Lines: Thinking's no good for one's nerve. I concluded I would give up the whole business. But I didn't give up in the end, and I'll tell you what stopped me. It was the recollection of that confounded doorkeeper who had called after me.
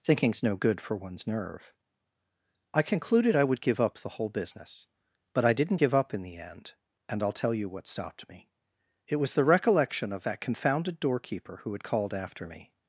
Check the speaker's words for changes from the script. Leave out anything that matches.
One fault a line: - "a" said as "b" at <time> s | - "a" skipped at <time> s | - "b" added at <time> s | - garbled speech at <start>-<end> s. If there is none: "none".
none